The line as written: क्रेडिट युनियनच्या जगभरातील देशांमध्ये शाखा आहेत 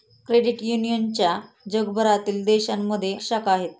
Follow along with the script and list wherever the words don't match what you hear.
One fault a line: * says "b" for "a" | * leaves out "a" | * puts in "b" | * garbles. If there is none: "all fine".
all fine